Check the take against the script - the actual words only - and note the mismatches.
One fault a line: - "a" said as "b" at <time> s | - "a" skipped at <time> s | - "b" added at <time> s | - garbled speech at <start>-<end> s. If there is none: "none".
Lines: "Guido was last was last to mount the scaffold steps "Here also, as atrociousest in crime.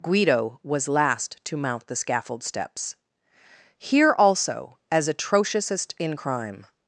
- "was last" skipped at 1.4 s